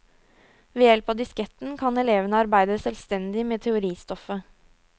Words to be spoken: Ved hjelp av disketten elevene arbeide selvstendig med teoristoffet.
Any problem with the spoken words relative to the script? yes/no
yes